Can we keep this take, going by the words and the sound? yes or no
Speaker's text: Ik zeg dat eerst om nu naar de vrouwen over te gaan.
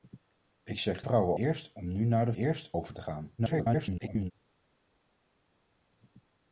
no